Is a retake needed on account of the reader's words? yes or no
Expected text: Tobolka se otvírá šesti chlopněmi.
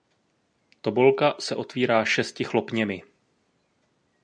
no